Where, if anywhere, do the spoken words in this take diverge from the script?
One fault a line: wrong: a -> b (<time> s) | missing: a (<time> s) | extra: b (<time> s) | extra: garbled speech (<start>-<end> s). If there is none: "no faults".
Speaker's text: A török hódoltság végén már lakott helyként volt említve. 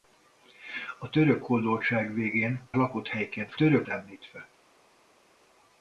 missing: már (2.7 s)
wrong: volt -> török (3.5 s)